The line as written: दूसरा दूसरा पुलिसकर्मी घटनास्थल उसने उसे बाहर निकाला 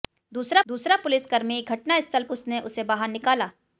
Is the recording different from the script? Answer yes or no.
no